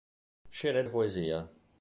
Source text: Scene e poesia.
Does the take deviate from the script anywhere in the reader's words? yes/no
no